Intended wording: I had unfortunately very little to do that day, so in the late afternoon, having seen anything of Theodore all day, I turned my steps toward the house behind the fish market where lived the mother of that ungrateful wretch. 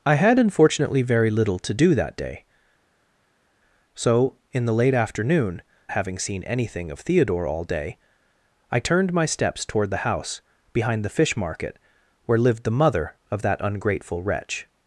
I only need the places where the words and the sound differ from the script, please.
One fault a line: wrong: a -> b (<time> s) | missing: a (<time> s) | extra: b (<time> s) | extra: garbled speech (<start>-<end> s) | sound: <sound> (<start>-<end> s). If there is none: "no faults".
no faults